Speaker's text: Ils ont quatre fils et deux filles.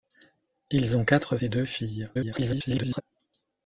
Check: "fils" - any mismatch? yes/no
yes